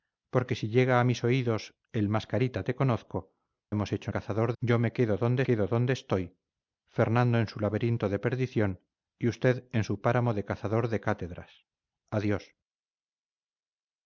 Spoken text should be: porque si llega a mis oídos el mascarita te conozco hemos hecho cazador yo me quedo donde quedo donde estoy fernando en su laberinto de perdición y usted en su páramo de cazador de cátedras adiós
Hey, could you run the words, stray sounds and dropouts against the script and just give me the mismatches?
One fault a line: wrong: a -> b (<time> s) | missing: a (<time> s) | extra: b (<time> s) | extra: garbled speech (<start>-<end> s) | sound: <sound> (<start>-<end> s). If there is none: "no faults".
no faults